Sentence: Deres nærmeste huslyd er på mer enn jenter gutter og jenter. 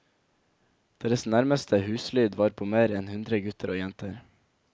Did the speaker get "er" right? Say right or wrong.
wrong